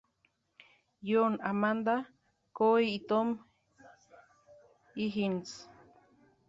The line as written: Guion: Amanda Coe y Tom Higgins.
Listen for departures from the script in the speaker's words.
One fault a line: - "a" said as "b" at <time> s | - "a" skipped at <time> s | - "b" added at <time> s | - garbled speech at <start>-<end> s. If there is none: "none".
none